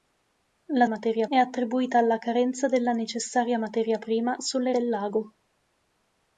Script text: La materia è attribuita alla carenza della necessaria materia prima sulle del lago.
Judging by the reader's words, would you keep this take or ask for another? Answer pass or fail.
pass